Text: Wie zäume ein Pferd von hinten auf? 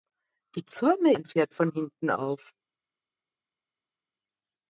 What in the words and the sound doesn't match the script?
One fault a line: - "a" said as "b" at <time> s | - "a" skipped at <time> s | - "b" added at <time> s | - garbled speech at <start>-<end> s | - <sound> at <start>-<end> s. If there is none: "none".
none